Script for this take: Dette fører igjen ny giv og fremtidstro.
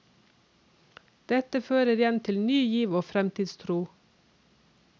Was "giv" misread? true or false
false